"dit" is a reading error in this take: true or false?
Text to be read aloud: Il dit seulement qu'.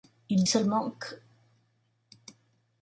true